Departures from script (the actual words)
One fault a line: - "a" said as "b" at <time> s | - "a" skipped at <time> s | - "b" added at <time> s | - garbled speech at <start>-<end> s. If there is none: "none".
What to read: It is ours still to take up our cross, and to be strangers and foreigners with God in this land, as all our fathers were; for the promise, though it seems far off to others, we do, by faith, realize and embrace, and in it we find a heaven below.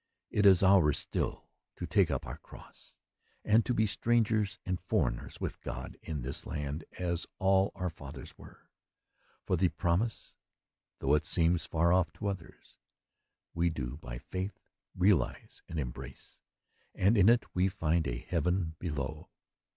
none